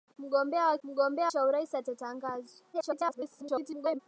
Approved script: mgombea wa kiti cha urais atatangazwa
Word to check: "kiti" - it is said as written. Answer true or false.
false